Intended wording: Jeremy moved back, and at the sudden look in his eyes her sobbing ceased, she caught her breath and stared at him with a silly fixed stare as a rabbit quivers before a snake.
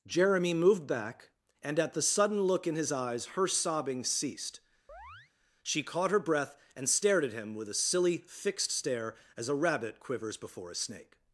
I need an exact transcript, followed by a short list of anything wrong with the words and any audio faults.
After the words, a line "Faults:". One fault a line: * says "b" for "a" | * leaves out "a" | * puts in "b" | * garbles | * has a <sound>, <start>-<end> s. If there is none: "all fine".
Jeremy moved back, and at the sudden look in his eyes her sobbing ceased, she caught her breath and stared at him with a silly fixed stare as a rabbit quivers before a snake.
Faults:
* has a chirp, 4.9-5.3 s